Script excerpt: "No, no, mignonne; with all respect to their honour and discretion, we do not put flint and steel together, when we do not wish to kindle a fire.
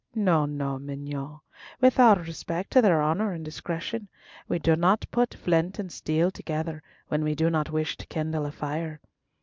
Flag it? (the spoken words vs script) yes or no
no